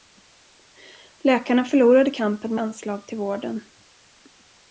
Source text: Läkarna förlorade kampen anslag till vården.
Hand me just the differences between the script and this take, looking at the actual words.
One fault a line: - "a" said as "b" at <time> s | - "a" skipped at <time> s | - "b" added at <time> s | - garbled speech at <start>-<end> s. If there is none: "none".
none